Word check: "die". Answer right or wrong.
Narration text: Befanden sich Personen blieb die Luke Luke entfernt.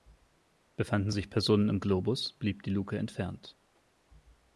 right